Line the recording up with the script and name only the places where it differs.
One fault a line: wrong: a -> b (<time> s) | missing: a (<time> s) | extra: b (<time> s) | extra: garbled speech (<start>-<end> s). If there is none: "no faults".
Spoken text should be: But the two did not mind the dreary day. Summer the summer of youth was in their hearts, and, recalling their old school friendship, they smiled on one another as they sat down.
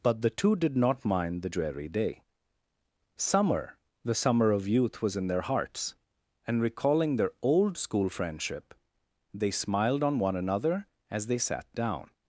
no faults